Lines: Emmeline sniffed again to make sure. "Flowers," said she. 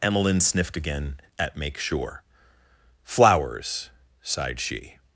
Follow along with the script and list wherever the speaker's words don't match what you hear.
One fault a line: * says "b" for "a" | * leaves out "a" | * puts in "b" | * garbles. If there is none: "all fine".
* says "at" for "to"
* says "sighed" for "said"